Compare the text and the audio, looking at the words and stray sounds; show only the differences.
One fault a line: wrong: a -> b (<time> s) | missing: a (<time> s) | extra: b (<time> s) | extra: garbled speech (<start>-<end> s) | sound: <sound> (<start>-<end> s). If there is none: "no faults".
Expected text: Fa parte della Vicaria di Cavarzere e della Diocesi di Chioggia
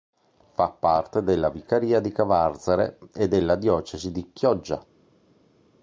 no faults